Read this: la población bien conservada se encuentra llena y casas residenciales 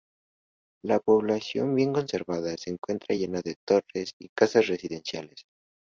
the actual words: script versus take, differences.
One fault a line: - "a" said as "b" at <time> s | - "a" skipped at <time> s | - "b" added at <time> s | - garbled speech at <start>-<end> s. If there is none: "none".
- "de torres" added at 3.4 s